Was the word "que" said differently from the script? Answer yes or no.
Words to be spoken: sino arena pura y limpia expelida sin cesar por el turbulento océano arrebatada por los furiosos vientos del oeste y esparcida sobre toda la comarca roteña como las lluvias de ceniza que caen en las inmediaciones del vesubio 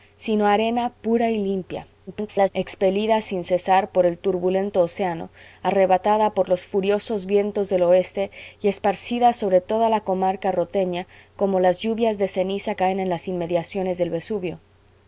yes